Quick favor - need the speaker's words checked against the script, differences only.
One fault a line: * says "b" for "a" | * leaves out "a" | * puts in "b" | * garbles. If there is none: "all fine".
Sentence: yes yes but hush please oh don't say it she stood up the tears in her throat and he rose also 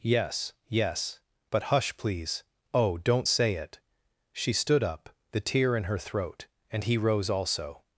* says "tear" for "tears"